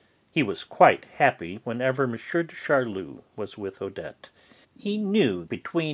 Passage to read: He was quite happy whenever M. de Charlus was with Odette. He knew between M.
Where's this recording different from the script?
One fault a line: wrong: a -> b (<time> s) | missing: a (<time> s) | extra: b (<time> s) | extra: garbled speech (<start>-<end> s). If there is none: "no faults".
no faults